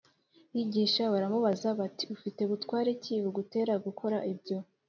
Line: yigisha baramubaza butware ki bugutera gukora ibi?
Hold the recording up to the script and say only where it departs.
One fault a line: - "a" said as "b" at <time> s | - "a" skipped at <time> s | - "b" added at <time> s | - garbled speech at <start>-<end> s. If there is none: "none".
- "bati Ufite" added at 1.8 s
- "ibi" said as "ibyo" at 4.3 s